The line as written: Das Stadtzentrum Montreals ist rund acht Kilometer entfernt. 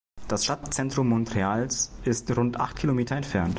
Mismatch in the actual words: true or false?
false